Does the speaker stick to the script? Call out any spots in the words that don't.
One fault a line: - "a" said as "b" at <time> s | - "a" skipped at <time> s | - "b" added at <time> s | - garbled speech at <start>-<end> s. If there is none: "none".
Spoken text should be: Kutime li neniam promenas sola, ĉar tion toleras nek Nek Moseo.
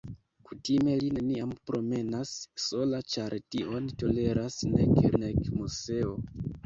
none